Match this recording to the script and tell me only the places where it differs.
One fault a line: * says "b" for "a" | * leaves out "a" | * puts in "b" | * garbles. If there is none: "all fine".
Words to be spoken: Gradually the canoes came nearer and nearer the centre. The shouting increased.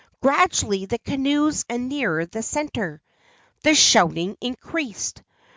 * leaves out "came nearer"